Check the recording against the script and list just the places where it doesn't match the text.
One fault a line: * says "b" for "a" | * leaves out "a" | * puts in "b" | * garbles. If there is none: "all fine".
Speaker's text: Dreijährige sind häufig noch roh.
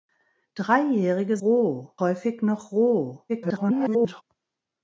* says "roh" for "sind"
* garbles